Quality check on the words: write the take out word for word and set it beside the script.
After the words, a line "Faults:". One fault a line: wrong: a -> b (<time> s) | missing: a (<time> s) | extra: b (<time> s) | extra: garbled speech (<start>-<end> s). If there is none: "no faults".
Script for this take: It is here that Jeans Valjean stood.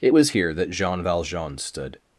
It was here that Jean Valjean stood.
Faults:
wrong: is -> was (0.1 s)
wrong: Jeans -> Jean (0.7 s)